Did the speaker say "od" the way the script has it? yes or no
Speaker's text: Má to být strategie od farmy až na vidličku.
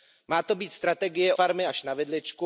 no